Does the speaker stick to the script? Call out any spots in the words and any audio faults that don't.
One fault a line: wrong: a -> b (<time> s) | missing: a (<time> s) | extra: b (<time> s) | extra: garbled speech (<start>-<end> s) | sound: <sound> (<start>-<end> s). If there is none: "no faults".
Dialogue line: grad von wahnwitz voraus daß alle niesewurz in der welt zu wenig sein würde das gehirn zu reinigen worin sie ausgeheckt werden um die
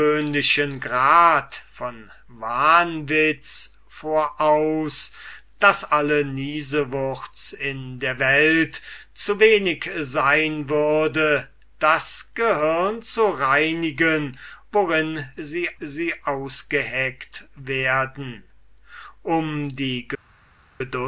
extra: sie (15.8 s)